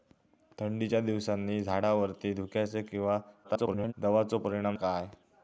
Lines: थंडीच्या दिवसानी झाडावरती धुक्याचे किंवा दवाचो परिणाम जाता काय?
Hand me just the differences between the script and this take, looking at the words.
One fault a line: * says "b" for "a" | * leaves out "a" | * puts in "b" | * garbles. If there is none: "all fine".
* garbles
* leaves out "जाता"